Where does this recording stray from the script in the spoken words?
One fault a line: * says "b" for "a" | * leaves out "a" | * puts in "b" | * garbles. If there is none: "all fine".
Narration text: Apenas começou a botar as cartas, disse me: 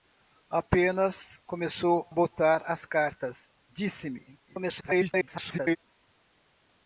* leaves out "a"
* garbles